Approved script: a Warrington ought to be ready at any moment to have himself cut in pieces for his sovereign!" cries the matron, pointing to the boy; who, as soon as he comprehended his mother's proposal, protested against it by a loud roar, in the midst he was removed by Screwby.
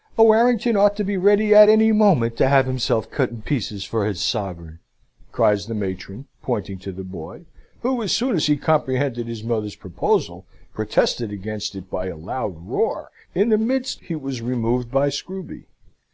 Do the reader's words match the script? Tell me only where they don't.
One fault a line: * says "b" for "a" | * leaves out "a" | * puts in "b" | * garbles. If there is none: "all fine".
all fine